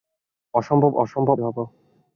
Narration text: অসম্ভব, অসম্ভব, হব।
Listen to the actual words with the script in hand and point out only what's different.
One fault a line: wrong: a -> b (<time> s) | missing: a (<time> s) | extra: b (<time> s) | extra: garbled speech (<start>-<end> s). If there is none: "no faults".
no faults